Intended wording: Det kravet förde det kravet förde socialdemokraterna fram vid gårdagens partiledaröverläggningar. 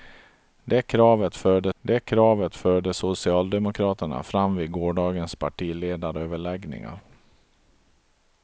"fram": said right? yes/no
yes